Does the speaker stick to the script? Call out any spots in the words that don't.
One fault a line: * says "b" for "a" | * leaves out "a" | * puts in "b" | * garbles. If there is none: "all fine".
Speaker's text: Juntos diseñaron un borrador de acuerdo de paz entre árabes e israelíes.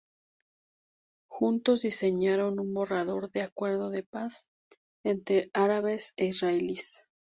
all fine